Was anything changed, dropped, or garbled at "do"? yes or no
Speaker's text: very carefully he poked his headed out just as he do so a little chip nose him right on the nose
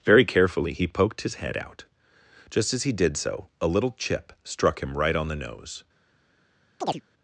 yes